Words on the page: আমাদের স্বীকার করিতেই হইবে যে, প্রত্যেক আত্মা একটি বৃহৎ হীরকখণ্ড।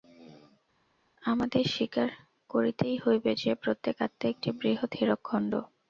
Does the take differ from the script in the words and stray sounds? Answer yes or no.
no